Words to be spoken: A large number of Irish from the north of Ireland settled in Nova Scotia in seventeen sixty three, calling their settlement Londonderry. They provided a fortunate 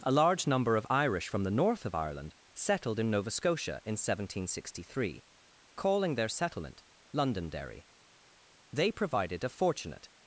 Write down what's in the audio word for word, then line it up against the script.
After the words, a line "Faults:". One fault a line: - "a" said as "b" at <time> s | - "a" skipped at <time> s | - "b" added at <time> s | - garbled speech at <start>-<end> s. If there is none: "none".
A large number of Irish from the north of Ireland settled in Nova Scotia in seventeen sixty three, calling their settlement Londonderry. They provided a fortunate
Faults:
none